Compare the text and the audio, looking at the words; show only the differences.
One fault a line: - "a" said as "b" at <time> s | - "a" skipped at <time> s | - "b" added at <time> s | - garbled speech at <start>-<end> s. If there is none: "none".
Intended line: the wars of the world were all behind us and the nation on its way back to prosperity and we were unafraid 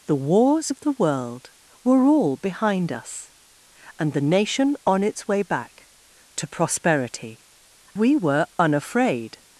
- "and" skipped at 7.5 s